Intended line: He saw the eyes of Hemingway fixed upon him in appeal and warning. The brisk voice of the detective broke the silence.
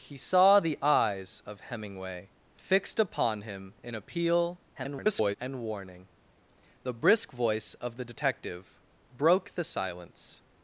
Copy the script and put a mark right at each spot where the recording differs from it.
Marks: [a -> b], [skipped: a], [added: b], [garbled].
He saw the eyes of Hemingway fixed upon him in appeal [garbled] and warning. The brisk voice of the detective broke the silence.